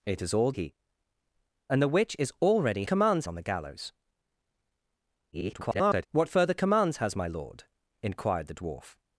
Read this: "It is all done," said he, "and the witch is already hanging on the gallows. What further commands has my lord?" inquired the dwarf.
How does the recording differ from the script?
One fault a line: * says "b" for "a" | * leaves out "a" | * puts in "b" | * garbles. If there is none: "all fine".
* leaves out "done said"
* says "commands" for "hanging"
* garbles